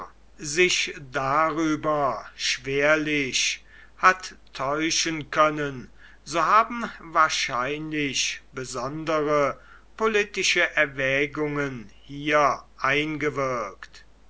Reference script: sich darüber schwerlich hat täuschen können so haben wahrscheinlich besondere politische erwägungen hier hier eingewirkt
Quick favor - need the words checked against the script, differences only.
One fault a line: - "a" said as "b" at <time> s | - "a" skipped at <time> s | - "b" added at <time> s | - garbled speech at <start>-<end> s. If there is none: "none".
- "hier" skipped at 12.7 s